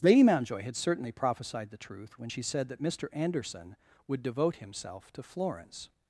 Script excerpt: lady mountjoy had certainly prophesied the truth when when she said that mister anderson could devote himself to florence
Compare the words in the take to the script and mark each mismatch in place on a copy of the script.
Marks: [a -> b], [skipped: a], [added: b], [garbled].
lady mountjoy had certainly prophesied the truth when [skipped: when] she said that mister anderson [could -> would] devote himself to florence